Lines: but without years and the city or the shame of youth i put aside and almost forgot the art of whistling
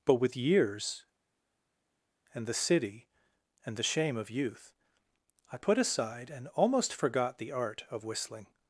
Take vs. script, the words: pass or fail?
fail